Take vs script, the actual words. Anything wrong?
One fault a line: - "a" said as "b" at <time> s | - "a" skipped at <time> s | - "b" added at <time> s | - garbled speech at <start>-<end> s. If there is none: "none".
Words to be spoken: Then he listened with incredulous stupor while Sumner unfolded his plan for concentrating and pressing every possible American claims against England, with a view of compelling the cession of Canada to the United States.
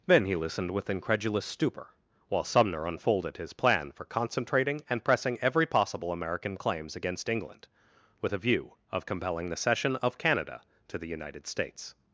none